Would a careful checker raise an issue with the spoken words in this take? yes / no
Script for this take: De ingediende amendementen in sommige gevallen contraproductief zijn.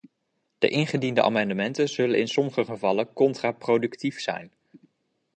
yes